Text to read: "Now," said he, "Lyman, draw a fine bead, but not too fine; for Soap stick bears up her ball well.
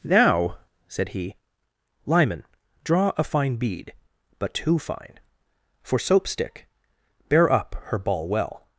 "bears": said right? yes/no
no